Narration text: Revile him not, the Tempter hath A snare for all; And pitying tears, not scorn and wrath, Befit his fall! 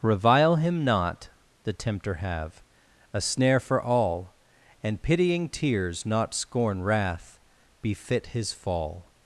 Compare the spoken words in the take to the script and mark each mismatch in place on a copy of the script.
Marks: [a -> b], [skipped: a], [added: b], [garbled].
Revile him not, the Tempter [hath -> have] A snare for all; And pitying tears, not scorn [skipped: and] wrath, Befit his fall!